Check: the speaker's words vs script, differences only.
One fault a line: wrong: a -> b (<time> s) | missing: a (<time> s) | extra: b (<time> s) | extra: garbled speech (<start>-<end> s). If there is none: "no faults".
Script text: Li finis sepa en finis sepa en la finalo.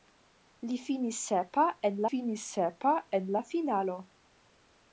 no faults